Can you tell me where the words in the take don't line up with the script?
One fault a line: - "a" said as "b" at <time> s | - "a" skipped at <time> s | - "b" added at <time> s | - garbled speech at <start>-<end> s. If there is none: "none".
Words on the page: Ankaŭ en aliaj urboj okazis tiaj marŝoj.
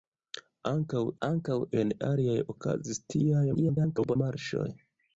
- "ankaŭ" added at 1.3 s
- "urboj" skipped at 2.4 s
- garbled speech at 3.5-4.2 s